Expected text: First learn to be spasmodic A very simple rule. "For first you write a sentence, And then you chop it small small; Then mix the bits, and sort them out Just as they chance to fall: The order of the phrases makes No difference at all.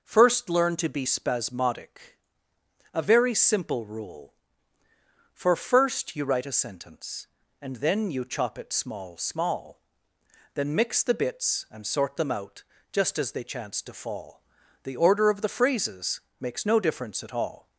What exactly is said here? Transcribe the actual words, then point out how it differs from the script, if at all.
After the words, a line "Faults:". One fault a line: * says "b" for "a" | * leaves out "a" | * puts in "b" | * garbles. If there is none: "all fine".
First learn to be spasmodic A very simple rule. "For first you write a sentence, And then you chop it small small; Then mix the bits, and sort them out Just as they chance to fall: The order of the phrases makes No difference at all.
Faults:
all fine